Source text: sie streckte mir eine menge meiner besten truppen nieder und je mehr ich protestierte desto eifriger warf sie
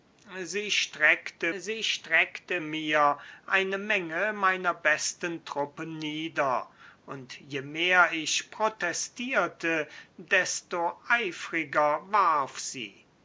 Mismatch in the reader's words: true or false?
true